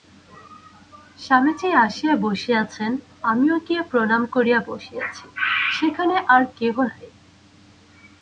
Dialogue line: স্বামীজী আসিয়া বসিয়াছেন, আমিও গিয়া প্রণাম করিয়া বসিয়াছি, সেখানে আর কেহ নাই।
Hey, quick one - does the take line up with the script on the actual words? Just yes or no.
yes